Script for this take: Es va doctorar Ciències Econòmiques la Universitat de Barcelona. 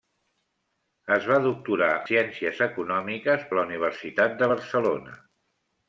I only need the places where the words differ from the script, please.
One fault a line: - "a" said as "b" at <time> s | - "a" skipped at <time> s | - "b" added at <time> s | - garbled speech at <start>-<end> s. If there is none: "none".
none